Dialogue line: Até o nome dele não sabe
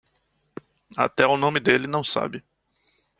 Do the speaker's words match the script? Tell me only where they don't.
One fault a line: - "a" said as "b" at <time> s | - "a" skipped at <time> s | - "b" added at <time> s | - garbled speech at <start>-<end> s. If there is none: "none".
none